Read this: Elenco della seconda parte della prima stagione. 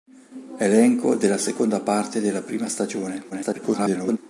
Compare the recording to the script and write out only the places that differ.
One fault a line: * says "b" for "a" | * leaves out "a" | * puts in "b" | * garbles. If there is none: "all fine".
* garbles